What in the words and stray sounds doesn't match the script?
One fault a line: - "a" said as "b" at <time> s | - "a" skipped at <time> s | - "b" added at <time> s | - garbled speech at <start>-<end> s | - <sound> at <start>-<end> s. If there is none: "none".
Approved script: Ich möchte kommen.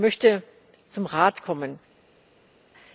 - "zum Rat" added at 0.9 s